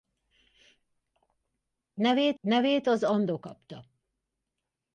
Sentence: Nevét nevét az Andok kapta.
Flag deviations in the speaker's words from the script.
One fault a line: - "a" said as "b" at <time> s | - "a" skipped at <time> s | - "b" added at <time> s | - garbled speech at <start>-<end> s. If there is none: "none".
none